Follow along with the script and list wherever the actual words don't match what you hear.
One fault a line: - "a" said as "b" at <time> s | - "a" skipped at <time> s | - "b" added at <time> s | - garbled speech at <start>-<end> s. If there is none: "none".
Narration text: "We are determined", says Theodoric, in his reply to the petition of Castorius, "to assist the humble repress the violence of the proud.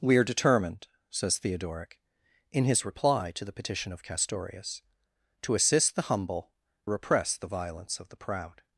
none